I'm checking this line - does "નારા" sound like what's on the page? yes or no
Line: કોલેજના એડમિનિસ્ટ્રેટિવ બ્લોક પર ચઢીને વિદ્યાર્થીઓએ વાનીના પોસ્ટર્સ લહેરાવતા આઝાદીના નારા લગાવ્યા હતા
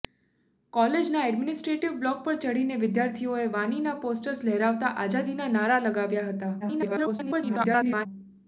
yes